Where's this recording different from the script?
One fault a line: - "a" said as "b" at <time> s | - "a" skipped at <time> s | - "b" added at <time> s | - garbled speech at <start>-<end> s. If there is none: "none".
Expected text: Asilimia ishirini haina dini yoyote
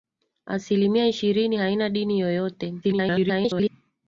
- garbled speech at 2.8-3.7 s